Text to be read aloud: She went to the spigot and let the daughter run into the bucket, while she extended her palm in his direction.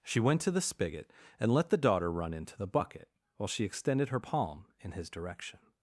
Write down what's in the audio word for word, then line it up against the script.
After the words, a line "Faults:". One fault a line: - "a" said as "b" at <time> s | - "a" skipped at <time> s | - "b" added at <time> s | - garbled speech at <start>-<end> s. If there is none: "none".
She went to the spigot and let the daughter run into the bucket, while she extended her palm in his direction.
Faults:
none